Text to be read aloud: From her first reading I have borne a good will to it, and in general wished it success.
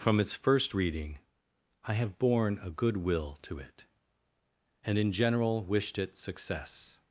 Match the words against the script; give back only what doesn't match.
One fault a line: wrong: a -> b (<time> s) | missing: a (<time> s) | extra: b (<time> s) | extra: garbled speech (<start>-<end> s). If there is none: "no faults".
wrong: her -> its (0.2 s)